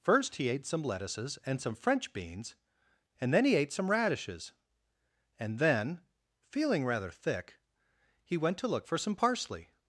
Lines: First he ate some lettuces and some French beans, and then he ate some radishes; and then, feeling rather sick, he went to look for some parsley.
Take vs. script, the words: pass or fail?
fail